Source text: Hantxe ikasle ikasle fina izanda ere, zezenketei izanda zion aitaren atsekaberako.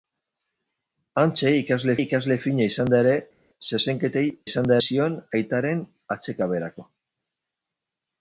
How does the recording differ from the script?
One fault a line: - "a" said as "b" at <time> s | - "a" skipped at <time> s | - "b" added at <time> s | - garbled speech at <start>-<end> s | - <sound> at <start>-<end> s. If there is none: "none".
none